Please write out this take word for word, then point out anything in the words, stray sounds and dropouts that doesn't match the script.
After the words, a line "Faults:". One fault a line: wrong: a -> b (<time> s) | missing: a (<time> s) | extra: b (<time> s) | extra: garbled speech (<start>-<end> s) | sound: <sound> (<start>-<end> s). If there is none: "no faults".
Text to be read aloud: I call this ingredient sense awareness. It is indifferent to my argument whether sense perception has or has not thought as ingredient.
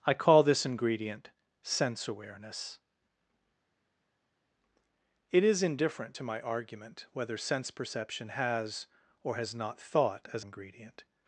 I call this ingredient sense awareness. It is indifferent to my argument whether sense perception has or has not thought as ingredient.
Faults:
no faults